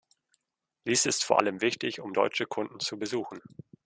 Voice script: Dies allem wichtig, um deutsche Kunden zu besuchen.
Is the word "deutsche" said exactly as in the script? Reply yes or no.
yes